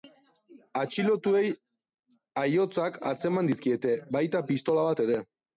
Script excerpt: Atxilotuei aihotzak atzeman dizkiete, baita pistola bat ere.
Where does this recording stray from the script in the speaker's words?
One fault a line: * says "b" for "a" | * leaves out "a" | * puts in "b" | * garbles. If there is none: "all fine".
all fine